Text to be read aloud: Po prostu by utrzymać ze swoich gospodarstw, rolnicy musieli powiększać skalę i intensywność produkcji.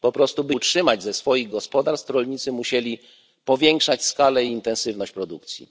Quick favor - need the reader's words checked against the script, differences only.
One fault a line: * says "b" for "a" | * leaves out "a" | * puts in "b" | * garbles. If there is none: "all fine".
all fine